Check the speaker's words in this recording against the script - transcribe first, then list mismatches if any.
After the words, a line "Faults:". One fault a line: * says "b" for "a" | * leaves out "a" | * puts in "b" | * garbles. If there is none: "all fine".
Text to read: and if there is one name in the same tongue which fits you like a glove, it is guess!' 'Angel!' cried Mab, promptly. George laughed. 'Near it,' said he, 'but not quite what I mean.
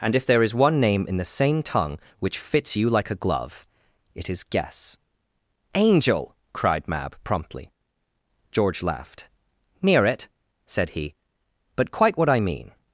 and if there is one name in the same tongue which fits you like a glove, it is guess!' 'Angel!' cried Mab, promptly. George laughed. 'Near it,' said he, 'but quite what I mean.
Faults:
* leaves out "not"